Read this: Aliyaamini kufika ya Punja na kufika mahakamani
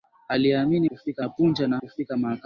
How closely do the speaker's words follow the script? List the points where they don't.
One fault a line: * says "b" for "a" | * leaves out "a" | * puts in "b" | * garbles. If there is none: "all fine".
all fine